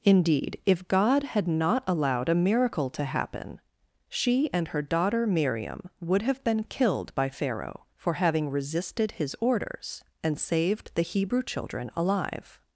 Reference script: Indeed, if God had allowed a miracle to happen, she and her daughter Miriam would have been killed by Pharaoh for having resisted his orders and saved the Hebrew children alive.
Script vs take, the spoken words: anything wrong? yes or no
yes